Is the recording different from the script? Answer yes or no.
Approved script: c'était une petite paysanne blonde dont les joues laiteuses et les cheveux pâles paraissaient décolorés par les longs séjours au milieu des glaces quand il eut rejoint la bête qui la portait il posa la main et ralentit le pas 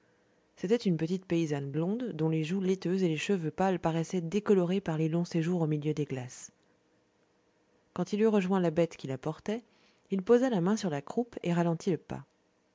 yes